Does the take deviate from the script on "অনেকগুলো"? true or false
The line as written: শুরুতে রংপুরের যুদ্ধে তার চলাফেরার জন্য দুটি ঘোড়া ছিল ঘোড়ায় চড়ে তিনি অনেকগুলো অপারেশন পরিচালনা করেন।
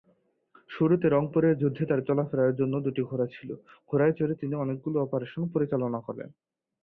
false